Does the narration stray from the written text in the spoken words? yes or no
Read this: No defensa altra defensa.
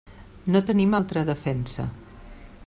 yes